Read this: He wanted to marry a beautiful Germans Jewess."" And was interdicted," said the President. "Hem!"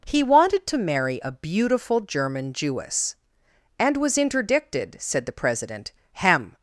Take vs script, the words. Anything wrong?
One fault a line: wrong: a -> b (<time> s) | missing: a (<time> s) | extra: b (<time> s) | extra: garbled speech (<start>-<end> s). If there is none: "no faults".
wrong: Germans -> German (2.0 s)